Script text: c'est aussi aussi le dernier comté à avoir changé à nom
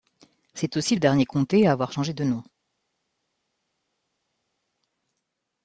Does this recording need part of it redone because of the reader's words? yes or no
yes